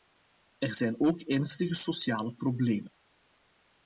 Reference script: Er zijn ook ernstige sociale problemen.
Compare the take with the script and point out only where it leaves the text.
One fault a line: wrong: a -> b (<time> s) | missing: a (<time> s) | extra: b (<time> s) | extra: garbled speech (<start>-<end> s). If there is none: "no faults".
no faults